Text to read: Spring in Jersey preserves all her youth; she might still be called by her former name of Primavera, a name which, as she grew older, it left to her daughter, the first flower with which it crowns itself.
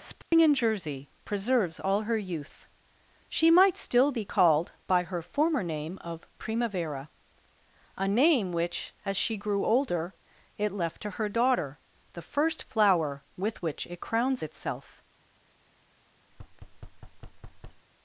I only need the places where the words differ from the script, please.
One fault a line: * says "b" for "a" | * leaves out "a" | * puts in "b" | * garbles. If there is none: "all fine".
all fine